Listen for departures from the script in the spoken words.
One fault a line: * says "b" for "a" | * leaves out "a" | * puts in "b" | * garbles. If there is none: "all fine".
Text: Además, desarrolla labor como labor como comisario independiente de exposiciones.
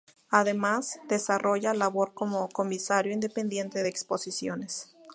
* leaves out "labor como"